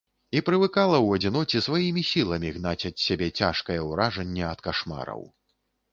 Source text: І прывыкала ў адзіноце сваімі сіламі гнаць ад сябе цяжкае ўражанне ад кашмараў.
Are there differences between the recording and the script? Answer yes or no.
no